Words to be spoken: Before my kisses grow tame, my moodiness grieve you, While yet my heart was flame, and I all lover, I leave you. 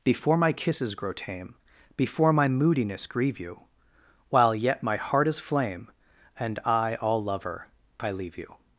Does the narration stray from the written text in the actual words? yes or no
yes